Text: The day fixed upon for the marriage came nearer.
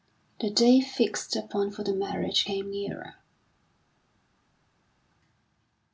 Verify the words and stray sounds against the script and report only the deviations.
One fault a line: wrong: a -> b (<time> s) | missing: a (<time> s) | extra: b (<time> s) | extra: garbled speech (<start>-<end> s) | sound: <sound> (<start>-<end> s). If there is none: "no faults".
no faults